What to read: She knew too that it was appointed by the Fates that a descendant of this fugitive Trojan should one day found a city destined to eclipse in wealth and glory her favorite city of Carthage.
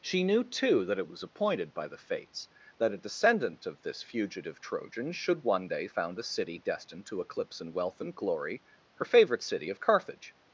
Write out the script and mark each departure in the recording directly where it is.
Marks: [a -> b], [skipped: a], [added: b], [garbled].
She knew too that it was appointed by the Fates that a descendant of this fugitive Trojan should one day found a city destined to eclipse in wealth and glory her favorite city of Carthage.